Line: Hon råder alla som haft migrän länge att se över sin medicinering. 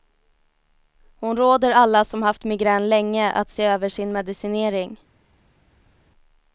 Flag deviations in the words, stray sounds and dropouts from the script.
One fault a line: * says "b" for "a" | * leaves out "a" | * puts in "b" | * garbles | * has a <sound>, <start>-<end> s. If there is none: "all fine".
all fine